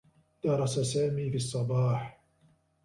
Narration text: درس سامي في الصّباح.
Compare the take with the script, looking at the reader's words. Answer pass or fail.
pass